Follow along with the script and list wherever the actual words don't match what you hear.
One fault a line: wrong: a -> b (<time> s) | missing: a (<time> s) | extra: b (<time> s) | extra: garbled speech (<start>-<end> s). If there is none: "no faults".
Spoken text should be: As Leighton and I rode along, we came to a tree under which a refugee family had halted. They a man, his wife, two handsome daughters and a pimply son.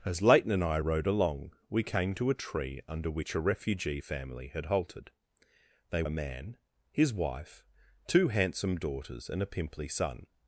no faults